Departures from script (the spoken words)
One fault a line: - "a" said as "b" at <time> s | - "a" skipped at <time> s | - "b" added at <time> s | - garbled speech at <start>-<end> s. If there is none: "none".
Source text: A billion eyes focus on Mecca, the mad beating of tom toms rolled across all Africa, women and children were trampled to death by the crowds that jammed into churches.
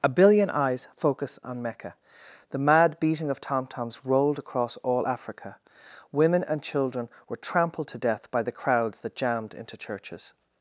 none